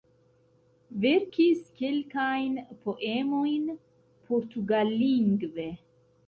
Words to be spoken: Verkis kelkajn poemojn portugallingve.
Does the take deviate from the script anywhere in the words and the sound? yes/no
no